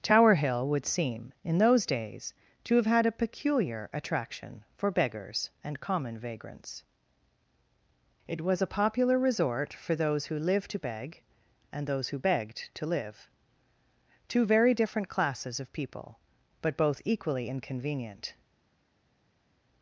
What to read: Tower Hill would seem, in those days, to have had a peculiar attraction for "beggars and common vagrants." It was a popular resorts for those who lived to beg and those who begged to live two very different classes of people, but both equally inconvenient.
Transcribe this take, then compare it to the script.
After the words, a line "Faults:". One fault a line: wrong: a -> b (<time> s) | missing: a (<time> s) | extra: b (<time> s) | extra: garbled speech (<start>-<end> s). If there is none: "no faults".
Tower Hill would seem, in those days, to have had a peculiar attraction for "beggars and common vagrants." It was a popular resort for those who lived to beg and those who begged to live two very different classes of people, but both equally inconvenient.
Faults:
wrong: resorts -> resort (9.2 s)